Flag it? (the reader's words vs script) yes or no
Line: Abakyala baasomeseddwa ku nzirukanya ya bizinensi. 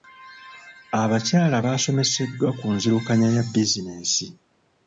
no